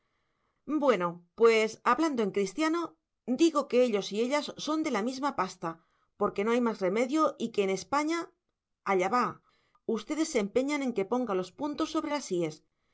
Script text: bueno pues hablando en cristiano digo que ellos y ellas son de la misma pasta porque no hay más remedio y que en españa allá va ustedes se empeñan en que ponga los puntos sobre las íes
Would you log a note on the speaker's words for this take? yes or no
no